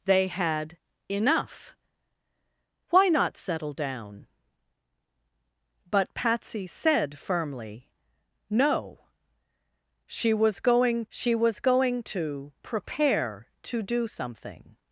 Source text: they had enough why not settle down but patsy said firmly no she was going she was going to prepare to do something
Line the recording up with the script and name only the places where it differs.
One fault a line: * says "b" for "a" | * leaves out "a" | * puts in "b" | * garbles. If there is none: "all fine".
all fine